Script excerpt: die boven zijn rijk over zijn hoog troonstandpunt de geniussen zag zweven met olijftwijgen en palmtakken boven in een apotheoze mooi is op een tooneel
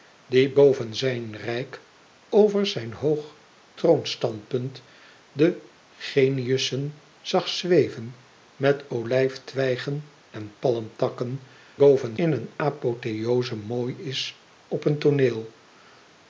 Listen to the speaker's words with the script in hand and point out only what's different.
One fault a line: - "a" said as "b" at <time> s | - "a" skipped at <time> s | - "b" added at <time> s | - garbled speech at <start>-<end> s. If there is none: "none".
none